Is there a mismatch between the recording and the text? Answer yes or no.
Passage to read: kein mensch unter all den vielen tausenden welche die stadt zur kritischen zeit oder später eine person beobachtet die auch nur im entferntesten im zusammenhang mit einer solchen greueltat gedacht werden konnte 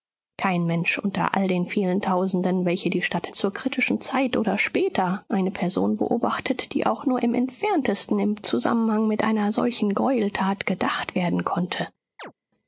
no